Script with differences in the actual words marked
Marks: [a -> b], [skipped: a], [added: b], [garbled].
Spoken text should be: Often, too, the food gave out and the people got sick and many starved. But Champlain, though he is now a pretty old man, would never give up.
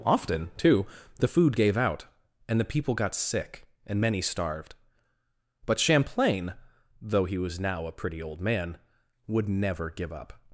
Often, too, the food gave out and the people got sick and many starved. But Champlain, though he [is -> was] now a pretty old man, would never give up.